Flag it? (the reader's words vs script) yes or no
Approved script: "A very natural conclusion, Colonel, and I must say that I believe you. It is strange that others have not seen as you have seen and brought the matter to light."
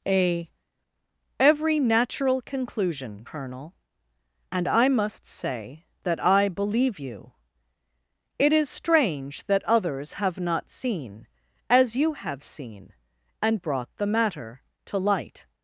yes